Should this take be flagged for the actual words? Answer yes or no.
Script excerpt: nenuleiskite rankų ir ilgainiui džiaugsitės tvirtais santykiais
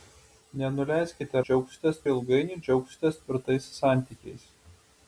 yes